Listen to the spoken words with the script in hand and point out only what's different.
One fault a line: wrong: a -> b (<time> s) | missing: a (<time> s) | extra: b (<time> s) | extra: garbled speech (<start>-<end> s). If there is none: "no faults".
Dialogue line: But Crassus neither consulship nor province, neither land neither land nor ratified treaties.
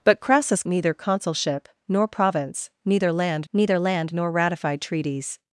no faults